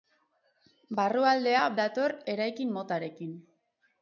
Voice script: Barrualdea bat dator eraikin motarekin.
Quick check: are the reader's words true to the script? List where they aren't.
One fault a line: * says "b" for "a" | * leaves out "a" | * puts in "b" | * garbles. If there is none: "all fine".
* leaves out "bat"